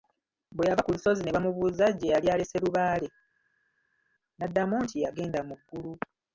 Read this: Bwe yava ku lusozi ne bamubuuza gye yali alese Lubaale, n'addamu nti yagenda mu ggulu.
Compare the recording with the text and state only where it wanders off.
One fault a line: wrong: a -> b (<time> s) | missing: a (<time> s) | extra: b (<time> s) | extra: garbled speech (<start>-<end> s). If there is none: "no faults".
no faults